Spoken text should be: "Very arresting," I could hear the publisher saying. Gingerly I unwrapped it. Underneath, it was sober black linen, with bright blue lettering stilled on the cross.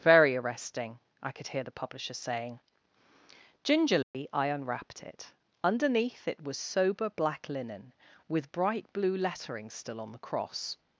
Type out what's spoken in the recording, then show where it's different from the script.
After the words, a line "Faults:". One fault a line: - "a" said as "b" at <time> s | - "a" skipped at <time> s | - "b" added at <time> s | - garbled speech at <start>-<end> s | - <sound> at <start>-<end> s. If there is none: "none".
"Very arresting," I could hear the publisher saying. Gingerly I unwrapped it. Underneath, it was sober black linen, with bright blue lettering still on the cross.
Faults:
- dropout at 4.0-4.1 s
- "stilled" said as "still" at 9.7 s